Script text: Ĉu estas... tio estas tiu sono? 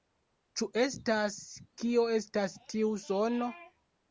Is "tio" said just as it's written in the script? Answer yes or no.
no